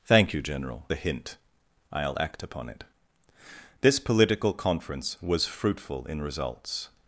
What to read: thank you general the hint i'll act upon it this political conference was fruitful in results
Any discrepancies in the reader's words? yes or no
no